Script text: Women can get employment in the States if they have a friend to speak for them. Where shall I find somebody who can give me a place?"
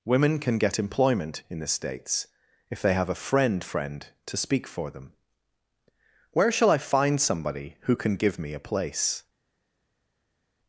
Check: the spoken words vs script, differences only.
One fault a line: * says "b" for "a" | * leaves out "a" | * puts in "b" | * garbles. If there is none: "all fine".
* puts in "friend"